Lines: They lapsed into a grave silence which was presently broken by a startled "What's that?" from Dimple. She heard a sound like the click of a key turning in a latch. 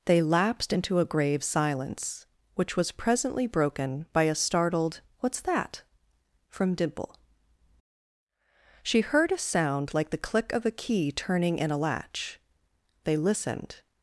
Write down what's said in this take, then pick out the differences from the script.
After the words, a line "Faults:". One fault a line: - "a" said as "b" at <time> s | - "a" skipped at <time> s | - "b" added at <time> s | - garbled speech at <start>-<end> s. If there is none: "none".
They lapsed into a grave silence which was presently broken by a startled "What's that?" from Dimple. She heard a sound like the click of a key turning in a latch. They listened
Faults:
- "They listened" added at 13.0 s